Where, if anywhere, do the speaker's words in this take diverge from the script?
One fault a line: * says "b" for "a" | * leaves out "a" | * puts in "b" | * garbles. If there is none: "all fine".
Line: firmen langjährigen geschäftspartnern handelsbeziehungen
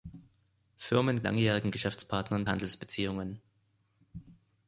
all fine